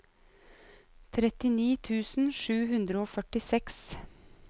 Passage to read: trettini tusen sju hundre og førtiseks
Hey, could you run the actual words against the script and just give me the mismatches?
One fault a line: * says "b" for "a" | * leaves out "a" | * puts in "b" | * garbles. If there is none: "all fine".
all fine